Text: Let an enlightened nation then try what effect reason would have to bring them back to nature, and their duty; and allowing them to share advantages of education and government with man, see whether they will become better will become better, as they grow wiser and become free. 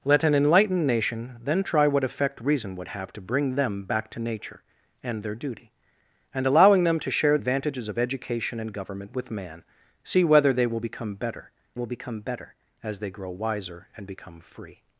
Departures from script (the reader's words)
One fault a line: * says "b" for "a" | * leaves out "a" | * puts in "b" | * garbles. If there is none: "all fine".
all fine